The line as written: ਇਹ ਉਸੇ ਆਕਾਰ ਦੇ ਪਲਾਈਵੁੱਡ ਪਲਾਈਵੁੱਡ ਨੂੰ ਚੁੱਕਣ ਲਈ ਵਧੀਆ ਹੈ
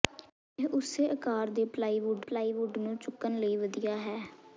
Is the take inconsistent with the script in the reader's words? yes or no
no